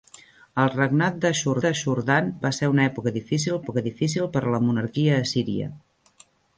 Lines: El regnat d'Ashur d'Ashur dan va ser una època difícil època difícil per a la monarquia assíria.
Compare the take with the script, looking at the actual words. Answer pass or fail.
pass